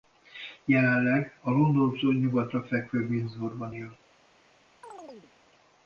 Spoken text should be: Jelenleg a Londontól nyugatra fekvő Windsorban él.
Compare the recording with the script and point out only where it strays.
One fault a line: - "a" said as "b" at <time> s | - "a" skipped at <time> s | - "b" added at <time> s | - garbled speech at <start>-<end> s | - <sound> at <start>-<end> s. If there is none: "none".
- chirp at 4.8-5.3 s